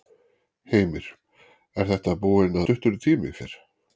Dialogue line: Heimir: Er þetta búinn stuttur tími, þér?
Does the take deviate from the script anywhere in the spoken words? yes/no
no